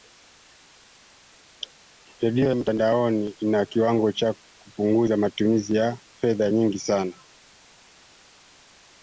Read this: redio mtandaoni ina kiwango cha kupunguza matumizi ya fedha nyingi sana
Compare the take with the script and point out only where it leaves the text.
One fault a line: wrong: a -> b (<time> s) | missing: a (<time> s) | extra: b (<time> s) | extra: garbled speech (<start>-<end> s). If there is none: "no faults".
no faults